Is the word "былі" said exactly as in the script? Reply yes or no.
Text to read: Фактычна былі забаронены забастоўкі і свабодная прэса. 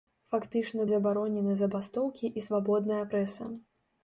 no